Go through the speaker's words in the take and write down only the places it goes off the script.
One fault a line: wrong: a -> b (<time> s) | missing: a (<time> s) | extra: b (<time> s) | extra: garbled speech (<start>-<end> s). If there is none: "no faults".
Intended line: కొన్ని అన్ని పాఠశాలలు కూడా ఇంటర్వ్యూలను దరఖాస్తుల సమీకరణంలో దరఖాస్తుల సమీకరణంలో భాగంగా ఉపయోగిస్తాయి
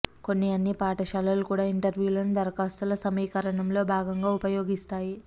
missing: దరఖాస్తుల సమీకరణంలో (3.8 s)